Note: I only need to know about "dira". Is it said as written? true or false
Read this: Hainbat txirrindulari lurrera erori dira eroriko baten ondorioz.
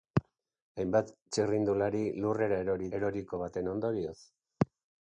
false